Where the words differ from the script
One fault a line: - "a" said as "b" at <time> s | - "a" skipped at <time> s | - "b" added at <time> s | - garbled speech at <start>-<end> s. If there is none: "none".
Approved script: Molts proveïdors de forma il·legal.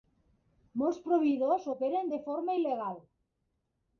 - "operen" added at 1.7 s